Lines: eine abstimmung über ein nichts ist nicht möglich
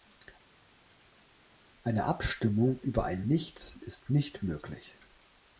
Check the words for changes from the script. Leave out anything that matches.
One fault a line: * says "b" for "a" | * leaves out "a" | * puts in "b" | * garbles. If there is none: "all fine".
all fine